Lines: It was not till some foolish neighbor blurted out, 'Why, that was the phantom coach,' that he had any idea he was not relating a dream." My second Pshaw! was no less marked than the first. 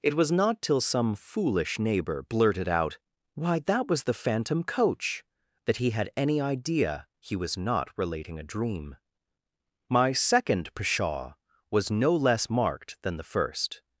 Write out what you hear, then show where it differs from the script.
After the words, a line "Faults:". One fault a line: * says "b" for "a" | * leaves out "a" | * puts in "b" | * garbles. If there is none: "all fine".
It was not till some foolish neighbor blurted out, 'Why, that was the phantom coach,' that he had any idea he was not relating a dream." My second Pshaw! was no less marked than the first.
Faults:
all fine